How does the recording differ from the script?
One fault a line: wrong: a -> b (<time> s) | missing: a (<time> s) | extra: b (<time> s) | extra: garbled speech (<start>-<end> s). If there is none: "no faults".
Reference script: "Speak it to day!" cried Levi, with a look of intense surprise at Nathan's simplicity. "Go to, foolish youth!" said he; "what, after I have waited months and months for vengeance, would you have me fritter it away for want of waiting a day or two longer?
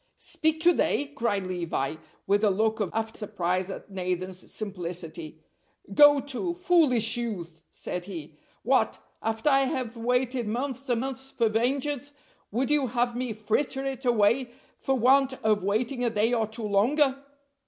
missing: it (0.7 s)
wrong: intense -> after (2.9 s)